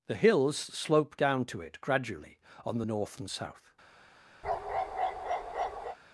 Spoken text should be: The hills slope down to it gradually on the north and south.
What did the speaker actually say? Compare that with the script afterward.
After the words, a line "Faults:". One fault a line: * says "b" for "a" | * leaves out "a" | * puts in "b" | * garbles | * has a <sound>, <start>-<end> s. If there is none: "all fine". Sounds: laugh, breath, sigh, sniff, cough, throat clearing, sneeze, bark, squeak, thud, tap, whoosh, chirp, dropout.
The hills slope down to it gradually on the north and south.
Faults:
* has a bark, 4.4-6.0 s